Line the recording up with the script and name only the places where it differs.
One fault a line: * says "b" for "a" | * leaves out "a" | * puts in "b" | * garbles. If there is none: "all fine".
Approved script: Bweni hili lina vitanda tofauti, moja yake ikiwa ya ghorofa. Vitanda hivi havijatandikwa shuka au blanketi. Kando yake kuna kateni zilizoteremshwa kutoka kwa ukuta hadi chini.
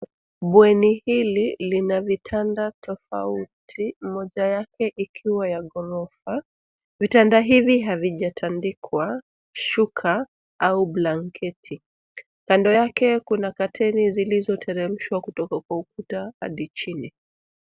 all fine